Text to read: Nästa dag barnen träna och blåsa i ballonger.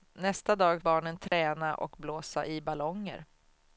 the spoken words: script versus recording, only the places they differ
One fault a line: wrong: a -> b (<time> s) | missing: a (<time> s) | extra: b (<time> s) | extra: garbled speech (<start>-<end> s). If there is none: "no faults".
no faults